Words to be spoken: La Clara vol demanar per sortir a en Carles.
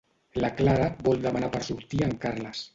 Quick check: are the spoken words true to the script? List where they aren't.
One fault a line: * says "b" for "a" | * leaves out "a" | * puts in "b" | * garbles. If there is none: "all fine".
all fine